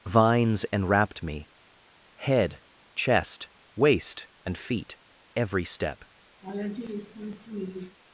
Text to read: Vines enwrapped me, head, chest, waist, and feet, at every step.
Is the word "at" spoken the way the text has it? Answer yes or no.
no